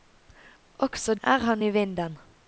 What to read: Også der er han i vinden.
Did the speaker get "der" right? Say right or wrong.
wrong